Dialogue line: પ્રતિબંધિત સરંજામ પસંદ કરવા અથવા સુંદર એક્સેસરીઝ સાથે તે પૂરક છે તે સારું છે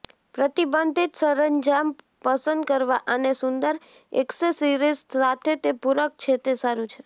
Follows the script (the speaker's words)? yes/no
no